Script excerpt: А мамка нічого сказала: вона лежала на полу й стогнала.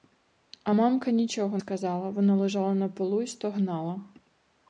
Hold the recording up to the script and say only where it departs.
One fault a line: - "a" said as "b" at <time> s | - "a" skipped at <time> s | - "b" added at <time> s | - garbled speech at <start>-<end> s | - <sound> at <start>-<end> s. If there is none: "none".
none